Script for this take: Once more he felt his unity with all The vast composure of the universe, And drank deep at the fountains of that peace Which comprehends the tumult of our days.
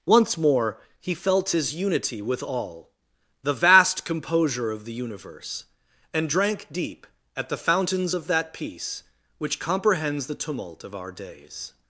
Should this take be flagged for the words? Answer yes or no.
no